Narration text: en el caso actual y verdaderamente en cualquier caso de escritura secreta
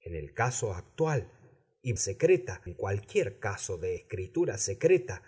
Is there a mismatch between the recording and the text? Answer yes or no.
yes